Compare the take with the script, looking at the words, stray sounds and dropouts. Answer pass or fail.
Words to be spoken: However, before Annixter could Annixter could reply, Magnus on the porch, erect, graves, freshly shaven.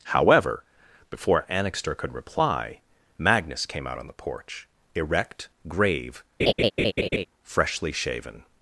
fail